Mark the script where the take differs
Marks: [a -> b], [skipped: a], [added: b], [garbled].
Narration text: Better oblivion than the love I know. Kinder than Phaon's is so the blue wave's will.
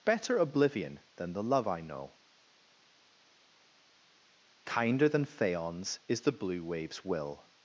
Better oblivion than the love I know. Kinder than Phaon's is [skipped: so] the blue wave's will.